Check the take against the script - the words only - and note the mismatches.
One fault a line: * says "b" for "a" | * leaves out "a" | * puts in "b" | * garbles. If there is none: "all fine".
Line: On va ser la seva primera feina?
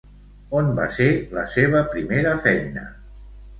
all fine